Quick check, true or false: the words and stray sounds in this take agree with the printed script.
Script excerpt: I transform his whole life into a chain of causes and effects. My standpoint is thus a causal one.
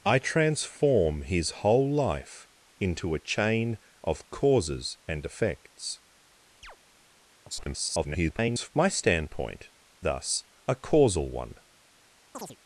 false